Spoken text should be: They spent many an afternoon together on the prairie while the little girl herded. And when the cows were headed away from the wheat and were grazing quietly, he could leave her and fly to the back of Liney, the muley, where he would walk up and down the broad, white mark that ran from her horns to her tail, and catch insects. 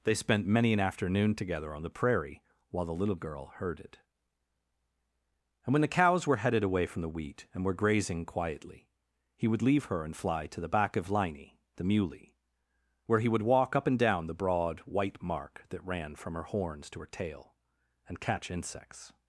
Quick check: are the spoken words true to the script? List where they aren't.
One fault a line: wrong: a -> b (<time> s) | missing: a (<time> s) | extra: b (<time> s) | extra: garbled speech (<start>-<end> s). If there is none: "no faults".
wrong: could -> would (9.5 s)